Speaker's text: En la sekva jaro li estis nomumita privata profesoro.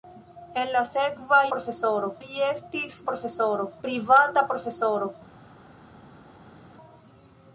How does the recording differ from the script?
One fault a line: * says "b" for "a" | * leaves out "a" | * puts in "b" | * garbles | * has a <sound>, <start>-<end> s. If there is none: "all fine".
* says "profesoro" for "jaro"
* says "profesoro" for "nomumita"